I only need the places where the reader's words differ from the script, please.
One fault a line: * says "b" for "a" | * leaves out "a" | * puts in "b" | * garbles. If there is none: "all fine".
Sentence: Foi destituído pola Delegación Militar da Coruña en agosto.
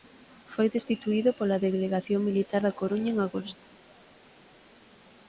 all fine